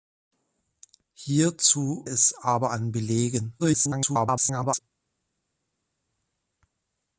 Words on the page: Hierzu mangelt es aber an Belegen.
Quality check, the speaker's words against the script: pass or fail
fail